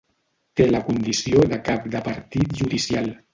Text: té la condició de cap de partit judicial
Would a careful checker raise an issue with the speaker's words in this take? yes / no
no